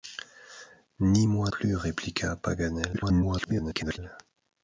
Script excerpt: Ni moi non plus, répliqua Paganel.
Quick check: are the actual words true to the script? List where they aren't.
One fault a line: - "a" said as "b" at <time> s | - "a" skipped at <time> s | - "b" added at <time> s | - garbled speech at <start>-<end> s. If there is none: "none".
- "non" skipped at 1.5 s
- garbled speech at 2.9-4.0 s